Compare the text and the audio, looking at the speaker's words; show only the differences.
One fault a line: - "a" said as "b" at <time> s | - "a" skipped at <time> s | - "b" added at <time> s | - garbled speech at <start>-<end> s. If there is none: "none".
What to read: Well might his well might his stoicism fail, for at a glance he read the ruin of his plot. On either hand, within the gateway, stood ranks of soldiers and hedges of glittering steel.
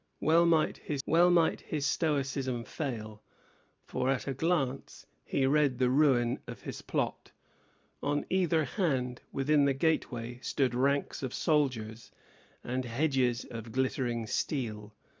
none